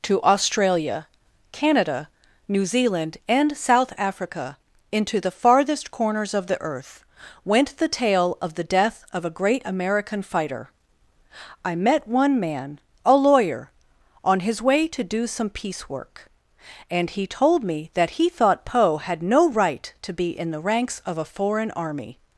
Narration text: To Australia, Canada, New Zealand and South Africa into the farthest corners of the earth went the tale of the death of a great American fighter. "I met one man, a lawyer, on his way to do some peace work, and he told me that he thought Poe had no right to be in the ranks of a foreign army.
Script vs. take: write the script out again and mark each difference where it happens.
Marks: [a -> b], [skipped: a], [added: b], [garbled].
To Australia, Canada, New Zealand and South Africa into the farthest corners of the earth went the tale of the death of a great American fighter. "I met one man, a lawyer, on his way to do some peace work, and he told me that he thought Poe had no right to be in the ranks of a foreign army.